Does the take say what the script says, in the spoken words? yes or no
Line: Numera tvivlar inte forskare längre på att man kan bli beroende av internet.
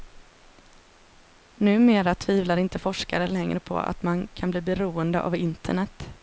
yes